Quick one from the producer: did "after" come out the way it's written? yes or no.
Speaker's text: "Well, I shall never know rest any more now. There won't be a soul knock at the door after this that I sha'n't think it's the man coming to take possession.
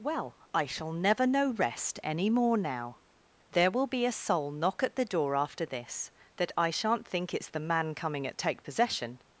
yes